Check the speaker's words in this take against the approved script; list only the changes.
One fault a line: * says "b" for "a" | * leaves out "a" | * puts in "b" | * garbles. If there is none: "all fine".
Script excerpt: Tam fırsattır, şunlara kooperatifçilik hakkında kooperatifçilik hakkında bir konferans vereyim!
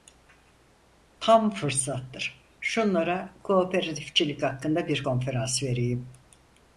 * leaves out "kooperatifçilik hakkında"